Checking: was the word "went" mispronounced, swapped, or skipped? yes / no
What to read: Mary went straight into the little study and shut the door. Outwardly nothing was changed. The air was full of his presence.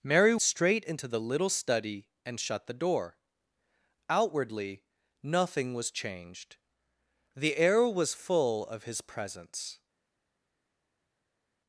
yes